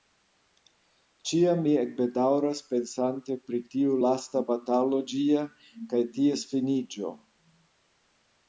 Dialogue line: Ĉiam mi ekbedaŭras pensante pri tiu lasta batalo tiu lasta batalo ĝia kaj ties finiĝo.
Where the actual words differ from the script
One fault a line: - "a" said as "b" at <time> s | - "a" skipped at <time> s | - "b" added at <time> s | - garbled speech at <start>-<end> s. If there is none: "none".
- "tiu lasta batalo" skipped at 5.0 s